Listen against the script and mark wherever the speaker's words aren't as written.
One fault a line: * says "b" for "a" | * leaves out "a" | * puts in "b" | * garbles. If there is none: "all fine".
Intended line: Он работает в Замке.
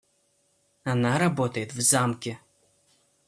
* says "Она" for "Он"